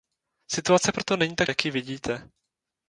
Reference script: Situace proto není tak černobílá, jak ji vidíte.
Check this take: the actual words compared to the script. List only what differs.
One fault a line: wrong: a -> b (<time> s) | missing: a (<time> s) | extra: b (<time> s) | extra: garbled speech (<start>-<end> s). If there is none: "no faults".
missing: černobílá (1.5 s)